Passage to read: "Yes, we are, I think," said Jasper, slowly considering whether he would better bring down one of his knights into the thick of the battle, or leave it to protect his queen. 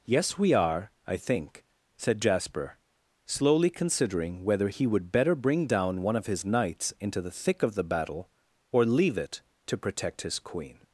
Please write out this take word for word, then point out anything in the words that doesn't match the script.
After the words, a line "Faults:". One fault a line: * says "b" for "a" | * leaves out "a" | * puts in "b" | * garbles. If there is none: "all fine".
"Yes, we are, I think," said Jasper, slowly considering whether he would better bring down one of his knights into the thick of the battle, or leave it to protect his queen.
Faults:
all fine